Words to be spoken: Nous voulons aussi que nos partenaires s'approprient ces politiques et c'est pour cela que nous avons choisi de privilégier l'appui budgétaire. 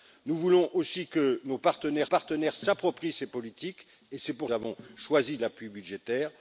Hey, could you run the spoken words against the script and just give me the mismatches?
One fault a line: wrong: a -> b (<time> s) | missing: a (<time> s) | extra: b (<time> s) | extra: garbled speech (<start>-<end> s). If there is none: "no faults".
extra: partenaires (2.0 s)
missing: cela que nous (4.5 s)
missing: de privilégier (5.4 s)